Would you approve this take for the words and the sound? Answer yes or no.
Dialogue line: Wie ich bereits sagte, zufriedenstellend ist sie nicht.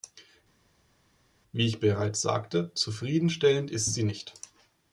yes